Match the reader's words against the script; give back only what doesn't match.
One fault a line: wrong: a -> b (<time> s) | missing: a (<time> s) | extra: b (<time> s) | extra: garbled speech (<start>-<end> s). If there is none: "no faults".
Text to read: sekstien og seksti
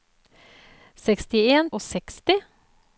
no faults